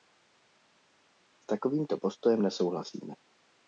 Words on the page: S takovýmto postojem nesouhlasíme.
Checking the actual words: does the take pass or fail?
pass